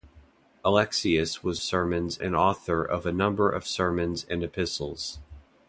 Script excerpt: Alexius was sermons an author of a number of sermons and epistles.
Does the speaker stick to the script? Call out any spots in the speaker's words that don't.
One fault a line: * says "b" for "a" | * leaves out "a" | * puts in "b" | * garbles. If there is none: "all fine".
all fine